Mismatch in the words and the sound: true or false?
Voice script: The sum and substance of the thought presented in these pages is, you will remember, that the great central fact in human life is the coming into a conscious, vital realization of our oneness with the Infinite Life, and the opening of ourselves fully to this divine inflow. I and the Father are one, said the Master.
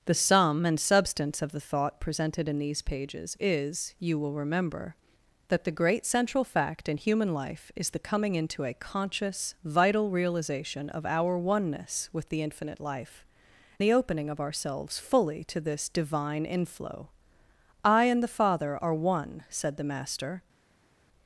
true